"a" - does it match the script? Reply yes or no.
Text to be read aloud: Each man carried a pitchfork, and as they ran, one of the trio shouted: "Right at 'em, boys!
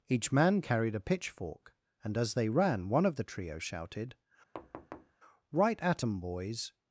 yes